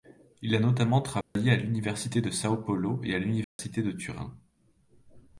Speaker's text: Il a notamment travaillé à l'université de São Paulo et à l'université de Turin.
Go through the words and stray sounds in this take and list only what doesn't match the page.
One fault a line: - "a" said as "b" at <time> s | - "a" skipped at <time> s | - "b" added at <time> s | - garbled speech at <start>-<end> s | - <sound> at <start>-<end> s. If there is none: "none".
- dropout at 1.2-1.4 s
- dropout at 3.4-3.6 s